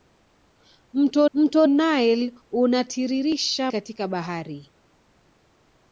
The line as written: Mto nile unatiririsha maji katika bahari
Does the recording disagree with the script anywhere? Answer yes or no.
yes